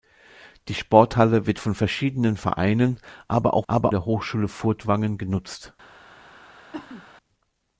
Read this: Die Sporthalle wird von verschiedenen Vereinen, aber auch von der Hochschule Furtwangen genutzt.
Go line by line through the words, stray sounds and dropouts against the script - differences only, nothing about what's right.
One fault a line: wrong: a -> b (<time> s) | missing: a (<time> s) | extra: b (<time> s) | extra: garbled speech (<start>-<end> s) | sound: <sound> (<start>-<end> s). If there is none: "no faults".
wrong: von -> aber (3.7 s)
sound: cough (6.7-7.1 s)